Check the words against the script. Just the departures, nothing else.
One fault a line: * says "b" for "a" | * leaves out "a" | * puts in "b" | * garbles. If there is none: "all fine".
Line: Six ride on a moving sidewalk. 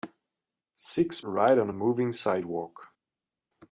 all fine